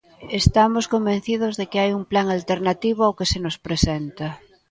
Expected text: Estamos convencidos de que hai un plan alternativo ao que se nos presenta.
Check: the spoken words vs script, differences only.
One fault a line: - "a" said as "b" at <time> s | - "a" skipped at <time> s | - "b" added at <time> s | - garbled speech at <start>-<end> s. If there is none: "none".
none